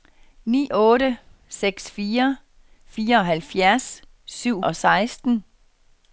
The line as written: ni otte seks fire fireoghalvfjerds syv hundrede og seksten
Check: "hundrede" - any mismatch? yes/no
yes